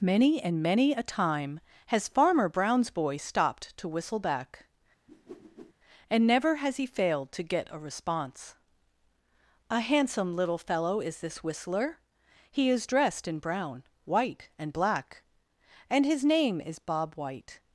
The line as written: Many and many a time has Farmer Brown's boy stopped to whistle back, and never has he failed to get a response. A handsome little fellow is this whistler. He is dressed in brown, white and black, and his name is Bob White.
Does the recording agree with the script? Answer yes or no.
yes